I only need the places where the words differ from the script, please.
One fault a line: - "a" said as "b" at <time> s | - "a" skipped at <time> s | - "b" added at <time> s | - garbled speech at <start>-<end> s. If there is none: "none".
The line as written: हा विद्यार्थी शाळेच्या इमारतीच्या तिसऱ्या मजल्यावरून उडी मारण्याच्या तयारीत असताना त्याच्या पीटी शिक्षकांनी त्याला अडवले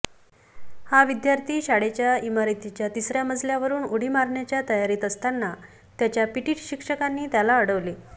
none